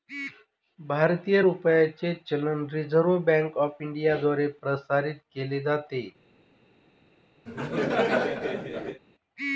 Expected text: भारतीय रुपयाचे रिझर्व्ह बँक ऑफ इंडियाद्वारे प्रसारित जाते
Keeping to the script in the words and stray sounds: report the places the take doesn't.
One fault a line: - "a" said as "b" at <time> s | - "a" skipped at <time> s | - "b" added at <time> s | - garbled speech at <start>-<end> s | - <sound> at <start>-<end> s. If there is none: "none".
- "चलन" added at 2.3 s
- "केले" added at 5.3 s
- laugh at 7.5-9.0 s